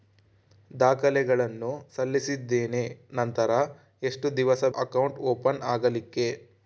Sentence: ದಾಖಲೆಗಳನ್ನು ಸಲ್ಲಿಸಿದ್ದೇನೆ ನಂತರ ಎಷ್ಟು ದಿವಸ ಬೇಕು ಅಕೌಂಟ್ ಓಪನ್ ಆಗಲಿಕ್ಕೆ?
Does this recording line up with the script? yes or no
no